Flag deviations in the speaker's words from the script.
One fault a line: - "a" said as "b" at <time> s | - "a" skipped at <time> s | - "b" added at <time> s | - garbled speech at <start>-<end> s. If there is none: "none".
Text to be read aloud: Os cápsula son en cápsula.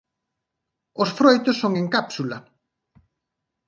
- "cápsula" said as "froitos" at 1.2 s